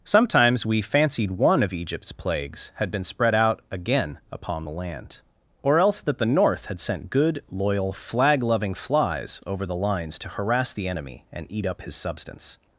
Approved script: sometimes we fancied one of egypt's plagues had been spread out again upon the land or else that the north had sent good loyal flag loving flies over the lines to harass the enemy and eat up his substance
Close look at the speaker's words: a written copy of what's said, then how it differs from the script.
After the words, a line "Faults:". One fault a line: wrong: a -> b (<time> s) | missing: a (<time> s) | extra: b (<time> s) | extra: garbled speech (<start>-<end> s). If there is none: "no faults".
sometimes we fancied one of egypt's plagues had been spread out again upon the land or else that the north had sent good loyal flag loving flies over the lines to harass the enemy and eat up his substance
Faults:
no faults